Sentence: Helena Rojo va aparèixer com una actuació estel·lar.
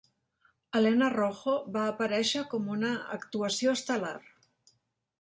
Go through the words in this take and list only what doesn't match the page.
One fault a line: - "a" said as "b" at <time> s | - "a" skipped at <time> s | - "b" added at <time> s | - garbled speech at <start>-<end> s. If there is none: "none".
none